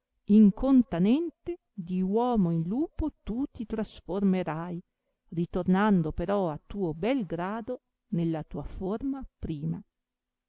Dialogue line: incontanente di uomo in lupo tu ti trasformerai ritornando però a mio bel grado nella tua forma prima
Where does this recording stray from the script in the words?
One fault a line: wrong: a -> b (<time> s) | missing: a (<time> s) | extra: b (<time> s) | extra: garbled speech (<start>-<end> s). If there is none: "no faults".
wrong: mio -> tuo (6.7 s)